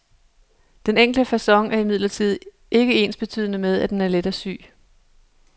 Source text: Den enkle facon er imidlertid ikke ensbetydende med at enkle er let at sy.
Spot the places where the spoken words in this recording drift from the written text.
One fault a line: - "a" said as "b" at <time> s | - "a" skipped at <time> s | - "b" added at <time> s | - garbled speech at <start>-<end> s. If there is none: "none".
- "enkle" said as "den" at 3.9 s